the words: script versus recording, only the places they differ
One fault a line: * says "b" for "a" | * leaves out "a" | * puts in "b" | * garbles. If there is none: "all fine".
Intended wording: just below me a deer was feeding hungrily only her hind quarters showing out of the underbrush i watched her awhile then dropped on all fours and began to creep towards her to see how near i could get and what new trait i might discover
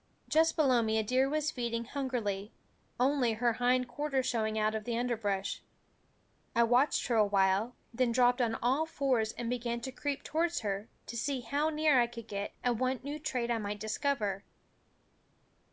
all fine